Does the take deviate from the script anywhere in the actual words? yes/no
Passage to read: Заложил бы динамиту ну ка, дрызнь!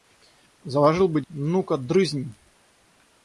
yes